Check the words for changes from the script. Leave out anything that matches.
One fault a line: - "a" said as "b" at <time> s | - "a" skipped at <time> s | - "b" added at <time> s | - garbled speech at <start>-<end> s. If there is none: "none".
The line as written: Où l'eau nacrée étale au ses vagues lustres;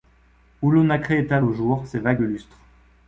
- "jour" added at 1.5 s